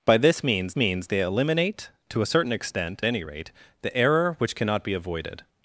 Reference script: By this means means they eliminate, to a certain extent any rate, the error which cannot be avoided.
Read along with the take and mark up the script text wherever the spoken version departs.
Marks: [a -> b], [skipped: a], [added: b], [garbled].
By this means means they eliminate, to a certain extent any rate, the error which cannot be avoided.